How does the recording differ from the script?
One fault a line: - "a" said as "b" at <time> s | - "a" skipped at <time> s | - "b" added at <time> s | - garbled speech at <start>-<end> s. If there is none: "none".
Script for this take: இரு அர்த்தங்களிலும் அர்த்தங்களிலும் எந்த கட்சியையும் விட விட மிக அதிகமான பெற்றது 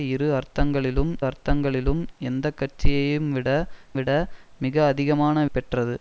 none